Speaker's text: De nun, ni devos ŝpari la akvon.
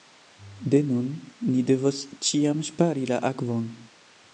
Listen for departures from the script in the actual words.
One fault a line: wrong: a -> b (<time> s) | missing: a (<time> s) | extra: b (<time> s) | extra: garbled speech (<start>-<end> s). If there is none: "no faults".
extra: ĉiam (2.3 s)